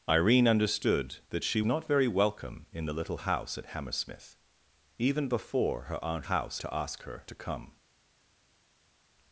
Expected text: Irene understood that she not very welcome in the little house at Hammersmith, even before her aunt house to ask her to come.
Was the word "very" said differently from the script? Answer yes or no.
no